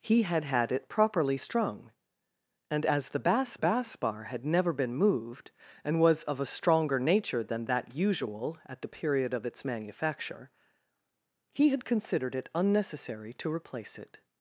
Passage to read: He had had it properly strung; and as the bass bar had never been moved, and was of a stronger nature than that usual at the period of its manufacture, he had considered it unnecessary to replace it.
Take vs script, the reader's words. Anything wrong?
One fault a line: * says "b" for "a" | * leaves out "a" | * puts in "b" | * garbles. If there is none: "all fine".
* puts in "bass"